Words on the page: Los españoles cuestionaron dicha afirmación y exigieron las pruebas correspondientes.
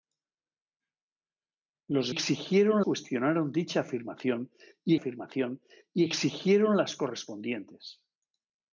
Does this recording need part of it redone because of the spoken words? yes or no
yes